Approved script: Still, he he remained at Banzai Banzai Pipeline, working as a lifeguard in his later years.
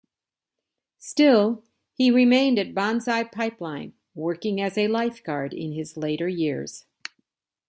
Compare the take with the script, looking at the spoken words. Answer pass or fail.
fail